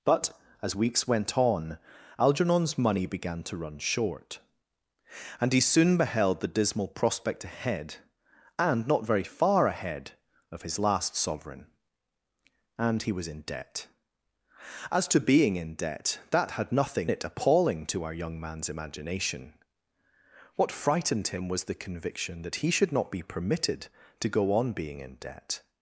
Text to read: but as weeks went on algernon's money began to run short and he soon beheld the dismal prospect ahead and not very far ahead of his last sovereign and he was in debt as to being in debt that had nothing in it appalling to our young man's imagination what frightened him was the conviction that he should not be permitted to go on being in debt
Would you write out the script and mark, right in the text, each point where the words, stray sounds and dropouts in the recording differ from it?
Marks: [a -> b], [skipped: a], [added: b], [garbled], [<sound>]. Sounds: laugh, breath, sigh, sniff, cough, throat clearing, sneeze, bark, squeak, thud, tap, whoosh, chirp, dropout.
but as weeks went on algernon's money began to run short and he soon beheld the dismal prospect ahead and not very far ahead of his last sovereign and he was in debt as to being in debt that had nothing [skipped: in] it appalling to our young man's imagination what frightened him was the conviction that he should not be permitted to go on being in debt